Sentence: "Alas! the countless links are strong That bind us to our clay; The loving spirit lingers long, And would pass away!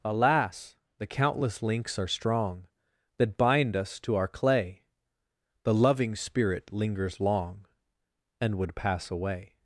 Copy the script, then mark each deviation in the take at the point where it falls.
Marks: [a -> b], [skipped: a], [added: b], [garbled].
"Alas! the countless links are strong That bind us to our clay; The loving spirit lingers long, And would pass away!